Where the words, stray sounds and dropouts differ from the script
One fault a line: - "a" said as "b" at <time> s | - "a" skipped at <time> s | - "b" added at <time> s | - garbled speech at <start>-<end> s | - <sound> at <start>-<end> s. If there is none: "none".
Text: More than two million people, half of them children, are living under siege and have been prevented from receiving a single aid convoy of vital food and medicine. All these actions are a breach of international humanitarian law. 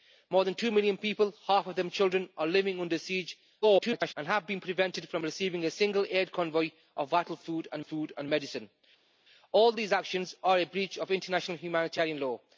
- garbled speech at 3.6-4.1 s
- "food and" added at 7.8 s